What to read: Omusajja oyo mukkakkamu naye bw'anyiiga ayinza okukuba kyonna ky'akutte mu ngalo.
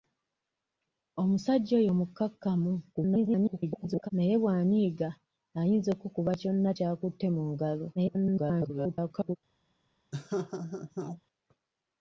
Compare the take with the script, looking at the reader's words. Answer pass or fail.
fail